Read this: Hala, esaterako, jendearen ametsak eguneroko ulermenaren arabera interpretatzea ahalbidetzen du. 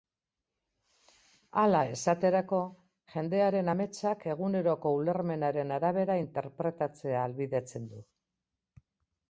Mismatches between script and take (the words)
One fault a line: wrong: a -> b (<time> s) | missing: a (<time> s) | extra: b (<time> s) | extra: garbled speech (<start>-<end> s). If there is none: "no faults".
no faults